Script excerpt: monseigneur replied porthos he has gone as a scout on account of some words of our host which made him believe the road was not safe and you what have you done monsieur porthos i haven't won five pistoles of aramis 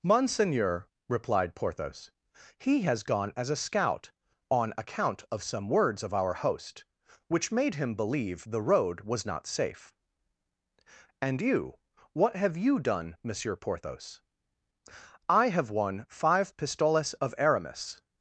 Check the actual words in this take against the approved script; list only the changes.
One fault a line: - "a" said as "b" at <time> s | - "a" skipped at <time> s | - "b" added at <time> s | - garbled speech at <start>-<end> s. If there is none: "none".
- "haven't" said as "have" at 15.5 s